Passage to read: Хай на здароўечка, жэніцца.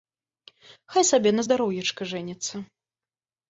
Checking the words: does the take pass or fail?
fail